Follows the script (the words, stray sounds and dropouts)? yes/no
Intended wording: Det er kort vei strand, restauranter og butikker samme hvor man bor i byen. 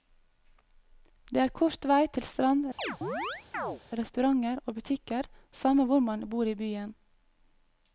no